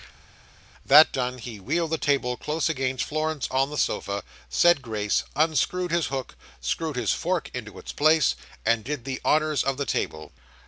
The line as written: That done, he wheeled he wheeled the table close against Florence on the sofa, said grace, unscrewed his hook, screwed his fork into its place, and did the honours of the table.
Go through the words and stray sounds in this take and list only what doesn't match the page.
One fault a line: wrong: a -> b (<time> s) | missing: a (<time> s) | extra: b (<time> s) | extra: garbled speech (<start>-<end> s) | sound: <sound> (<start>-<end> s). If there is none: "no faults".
missing: he wheeled (1.9 s)